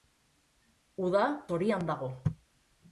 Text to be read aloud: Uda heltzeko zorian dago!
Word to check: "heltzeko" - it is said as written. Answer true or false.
false